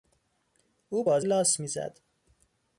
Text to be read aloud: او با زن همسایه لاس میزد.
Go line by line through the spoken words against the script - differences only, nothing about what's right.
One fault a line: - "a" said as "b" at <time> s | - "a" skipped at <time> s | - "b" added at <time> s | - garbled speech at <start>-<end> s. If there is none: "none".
- "زن همسایه" skipped at 1.2 s